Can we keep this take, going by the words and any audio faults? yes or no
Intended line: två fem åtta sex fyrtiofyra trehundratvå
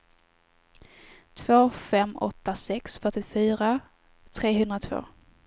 yes